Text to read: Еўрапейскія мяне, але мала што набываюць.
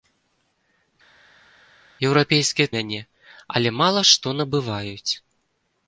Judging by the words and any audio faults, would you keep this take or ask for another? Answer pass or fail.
pass